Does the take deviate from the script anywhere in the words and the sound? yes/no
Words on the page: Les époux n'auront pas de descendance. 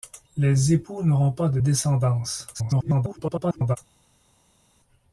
yes